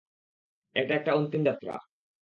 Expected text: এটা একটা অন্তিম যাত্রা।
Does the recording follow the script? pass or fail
pass